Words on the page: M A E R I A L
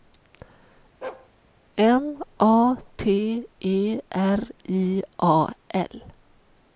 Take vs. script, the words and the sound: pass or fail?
fail